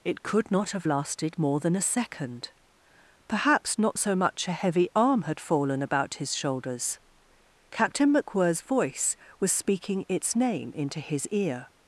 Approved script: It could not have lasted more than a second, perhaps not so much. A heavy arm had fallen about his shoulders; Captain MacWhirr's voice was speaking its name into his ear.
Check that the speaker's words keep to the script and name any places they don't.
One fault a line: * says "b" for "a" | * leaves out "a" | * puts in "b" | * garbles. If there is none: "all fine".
all fine